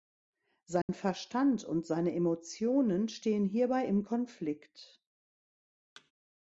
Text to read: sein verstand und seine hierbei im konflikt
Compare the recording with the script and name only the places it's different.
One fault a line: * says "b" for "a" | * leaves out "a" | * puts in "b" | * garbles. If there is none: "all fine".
* puts in "emotionen stehen"